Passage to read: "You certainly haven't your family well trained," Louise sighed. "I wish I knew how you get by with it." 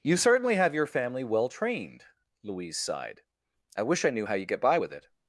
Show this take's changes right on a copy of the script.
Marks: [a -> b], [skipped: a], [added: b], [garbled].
"You certainly [haven't -> have] your family well trained," Louise sighed. "I wish I knew how you get by with it."